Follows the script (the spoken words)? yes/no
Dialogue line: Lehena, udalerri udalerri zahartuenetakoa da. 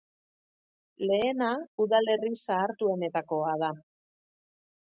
no